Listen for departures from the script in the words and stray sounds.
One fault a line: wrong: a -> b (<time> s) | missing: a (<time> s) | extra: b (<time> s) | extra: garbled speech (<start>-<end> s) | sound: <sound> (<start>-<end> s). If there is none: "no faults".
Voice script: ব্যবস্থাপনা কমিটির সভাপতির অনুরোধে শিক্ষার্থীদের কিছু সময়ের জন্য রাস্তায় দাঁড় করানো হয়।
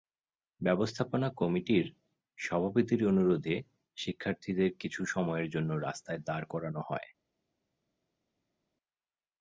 no faults